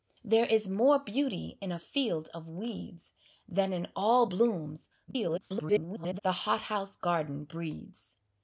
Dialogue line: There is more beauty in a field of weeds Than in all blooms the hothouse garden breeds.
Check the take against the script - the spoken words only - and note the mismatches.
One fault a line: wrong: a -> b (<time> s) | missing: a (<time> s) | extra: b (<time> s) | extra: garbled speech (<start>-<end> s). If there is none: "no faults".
extra: garbled speech (5.1-6.2 s)